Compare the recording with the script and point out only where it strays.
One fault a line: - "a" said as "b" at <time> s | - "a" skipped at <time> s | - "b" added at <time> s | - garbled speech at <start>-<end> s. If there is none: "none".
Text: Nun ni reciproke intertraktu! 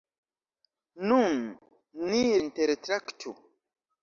- "reciproke" skipped at 2.2 s